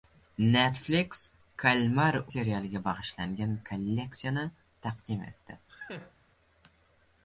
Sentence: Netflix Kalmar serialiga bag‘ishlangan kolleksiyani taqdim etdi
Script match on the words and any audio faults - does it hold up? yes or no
no